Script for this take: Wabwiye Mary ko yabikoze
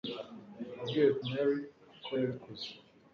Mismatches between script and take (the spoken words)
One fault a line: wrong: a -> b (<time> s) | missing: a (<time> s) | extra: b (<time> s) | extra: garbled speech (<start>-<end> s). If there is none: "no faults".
no faults